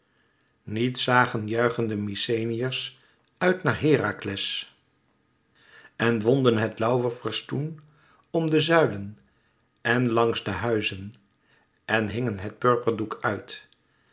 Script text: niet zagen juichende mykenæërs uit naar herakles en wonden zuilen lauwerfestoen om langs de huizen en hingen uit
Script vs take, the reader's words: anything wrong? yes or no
yes